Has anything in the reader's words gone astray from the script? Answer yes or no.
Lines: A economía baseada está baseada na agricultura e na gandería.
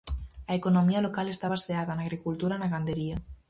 yes